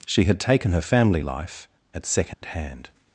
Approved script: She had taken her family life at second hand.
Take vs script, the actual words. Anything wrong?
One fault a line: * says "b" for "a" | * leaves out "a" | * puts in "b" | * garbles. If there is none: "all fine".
all fine